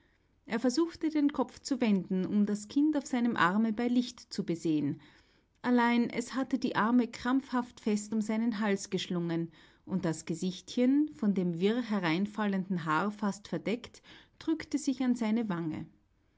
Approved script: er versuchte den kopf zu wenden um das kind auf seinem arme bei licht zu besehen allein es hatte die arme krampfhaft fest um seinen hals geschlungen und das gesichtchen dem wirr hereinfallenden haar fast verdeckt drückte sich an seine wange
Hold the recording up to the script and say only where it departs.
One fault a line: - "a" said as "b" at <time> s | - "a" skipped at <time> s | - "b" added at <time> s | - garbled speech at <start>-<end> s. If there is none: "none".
- "von" added at 11.1 s